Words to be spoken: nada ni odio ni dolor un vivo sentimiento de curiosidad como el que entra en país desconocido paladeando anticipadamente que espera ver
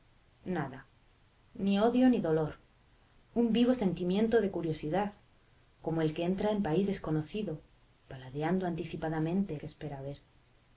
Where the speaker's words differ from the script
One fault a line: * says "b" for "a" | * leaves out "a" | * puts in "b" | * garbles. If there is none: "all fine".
all fine